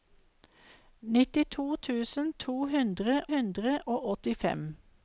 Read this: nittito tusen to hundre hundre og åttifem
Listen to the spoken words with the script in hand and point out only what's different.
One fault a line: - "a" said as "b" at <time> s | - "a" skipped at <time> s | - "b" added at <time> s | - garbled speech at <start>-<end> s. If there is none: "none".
none